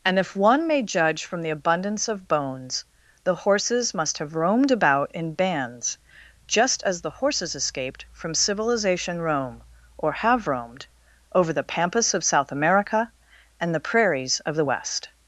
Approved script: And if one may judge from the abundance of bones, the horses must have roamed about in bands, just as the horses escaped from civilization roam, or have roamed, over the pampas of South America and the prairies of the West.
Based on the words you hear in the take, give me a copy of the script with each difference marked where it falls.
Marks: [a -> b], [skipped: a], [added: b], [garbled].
And if one may judge from the abundance of bones, the horses must have roamed about in bands, just as the horses escaped from civilization roam, or have roamed, over the pampas of South America and the prairies of the West.